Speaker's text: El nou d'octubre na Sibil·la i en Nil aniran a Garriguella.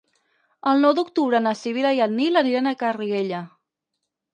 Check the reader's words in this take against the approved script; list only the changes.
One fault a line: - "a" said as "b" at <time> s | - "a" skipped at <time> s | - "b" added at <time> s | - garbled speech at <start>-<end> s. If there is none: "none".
none